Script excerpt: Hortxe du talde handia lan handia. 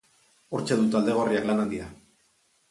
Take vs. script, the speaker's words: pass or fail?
fail